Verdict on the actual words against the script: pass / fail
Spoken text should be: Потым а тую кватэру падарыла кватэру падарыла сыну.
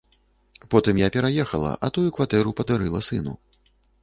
fail